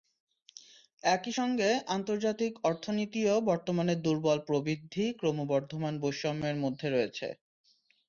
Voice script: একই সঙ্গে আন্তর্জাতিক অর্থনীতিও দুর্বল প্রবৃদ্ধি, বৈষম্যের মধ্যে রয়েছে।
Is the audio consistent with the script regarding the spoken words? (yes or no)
no